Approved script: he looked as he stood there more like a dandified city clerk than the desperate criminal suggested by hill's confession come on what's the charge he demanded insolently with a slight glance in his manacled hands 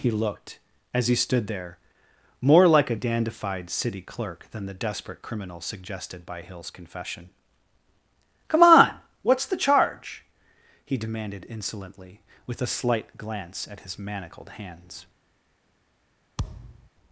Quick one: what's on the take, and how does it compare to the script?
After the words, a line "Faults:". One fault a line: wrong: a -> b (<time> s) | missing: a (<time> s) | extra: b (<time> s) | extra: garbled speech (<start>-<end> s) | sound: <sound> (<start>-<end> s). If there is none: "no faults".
he looked as he stood there more like a dandified city clerk than the desperate criminal suggested by hill's confession come on what's the charge he demanded insolently with a slight glance at his manacled hands
Faults:
wrong: in -> at (13.7 s)
sound: thud (16.4-16.9 s)